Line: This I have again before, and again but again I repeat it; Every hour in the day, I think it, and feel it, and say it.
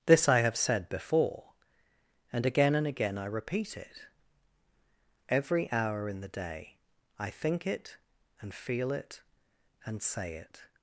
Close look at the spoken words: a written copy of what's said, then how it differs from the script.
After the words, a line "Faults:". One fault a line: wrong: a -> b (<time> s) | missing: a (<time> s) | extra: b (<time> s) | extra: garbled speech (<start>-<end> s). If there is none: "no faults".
This I have said before, and again and again I repeat it; Every hour in the day, I think it, and feel it, and say it.
Faults:
wrong: again -> said (0.6 s)
wrong: but -> and (2.7 s)